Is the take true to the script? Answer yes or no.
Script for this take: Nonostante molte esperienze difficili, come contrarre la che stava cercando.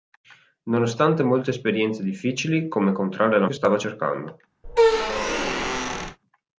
yes